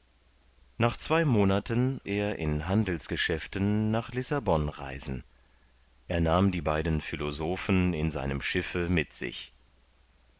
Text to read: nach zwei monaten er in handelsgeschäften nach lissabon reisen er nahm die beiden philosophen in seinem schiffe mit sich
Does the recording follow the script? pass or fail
pass